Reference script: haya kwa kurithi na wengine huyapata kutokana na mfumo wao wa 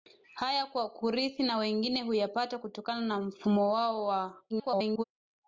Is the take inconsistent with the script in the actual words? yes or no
yes